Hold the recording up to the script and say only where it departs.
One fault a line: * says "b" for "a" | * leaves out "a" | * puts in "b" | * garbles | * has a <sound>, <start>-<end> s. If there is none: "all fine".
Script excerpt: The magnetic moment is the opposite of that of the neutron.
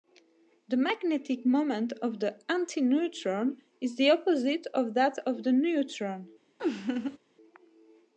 * puts in "of the antineutron"
* has a laugh, 6.6-7.2 s